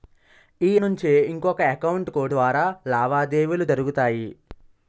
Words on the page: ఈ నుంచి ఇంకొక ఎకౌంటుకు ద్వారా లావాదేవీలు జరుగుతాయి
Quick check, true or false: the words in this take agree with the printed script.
true